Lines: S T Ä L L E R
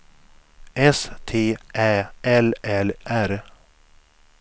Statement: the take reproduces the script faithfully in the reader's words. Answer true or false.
false